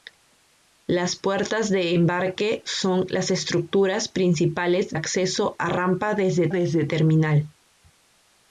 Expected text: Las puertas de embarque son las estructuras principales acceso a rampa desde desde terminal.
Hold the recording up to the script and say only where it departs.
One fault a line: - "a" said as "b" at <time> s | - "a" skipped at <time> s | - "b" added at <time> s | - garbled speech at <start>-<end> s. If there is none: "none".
none